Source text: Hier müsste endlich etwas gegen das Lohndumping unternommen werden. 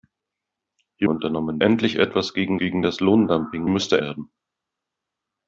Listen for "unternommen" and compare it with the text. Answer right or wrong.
wrong